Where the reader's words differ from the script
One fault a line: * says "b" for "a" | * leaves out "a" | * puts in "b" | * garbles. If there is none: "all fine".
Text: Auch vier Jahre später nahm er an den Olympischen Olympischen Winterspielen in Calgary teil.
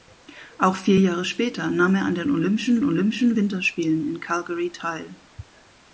all fine